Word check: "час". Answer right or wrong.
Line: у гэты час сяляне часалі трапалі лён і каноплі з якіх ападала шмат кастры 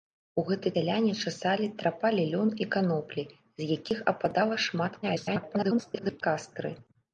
wrong